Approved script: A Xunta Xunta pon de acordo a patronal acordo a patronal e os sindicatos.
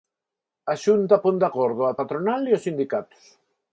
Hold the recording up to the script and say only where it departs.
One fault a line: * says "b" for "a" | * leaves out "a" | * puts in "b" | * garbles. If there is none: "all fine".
* leaves out "Xunta"
* leaves out "acordo a patronal"